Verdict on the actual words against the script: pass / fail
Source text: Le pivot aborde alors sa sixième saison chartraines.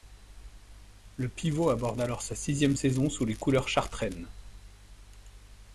fail